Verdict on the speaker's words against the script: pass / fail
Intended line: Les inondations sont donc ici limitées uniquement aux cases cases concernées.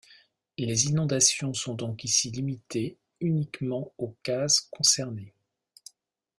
fail